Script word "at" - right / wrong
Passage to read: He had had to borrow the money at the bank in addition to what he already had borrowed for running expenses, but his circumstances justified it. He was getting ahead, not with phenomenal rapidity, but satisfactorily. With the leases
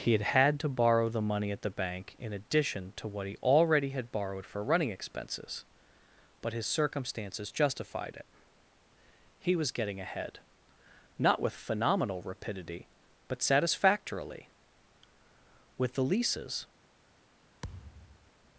right